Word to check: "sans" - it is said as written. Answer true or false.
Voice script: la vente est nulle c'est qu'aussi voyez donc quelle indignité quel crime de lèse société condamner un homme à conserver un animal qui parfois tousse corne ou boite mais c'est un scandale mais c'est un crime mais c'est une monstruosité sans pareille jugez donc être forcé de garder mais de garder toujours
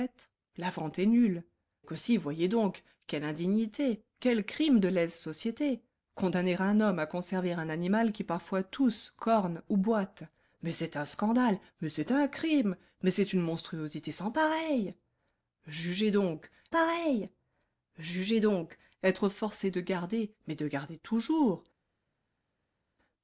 true